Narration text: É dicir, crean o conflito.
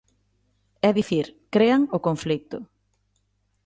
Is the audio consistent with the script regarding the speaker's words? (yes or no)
yes